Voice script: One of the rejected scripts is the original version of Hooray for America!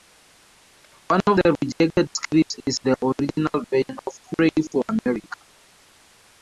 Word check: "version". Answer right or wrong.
right